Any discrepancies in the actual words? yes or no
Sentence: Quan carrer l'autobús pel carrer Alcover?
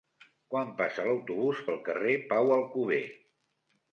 yes